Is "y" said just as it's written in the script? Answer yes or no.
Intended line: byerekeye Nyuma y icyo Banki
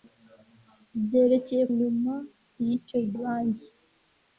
yes